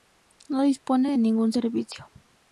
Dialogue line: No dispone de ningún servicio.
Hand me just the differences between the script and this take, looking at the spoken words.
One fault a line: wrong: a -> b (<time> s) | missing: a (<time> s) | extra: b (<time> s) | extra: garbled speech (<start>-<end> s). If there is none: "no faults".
no faults